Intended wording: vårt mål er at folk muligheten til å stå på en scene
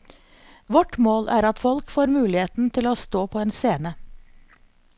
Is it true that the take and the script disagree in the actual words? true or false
true